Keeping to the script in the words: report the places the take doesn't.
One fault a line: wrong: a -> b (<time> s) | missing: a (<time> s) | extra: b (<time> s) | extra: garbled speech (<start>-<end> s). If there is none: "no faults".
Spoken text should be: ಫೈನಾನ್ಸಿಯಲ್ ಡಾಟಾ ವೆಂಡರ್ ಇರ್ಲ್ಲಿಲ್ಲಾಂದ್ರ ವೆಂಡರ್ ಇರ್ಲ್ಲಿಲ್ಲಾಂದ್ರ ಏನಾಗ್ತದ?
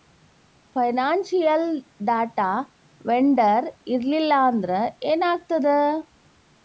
missing: ವೆಂಡರ್ ಇರ್ಲ್ಲಿಲ್ಲಾಂದ್ರ (4.7 s)